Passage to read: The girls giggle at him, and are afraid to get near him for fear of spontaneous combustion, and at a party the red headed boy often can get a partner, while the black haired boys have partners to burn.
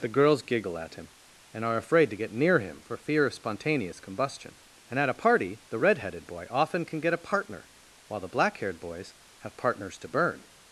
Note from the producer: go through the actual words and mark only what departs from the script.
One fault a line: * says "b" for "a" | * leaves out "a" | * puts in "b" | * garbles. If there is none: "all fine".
all fine